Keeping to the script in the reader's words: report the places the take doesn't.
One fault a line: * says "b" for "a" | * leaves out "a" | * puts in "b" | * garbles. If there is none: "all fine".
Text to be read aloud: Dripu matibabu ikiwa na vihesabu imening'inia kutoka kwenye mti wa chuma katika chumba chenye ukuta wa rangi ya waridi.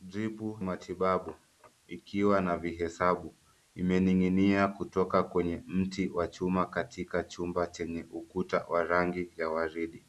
all fine